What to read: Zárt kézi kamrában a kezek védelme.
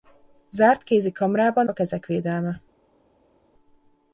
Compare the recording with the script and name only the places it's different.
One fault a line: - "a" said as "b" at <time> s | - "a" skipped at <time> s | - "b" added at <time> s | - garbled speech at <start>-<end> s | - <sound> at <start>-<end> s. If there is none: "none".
none